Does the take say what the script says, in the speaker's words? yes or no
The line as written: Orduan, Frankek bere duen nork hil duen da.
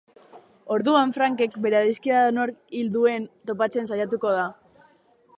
no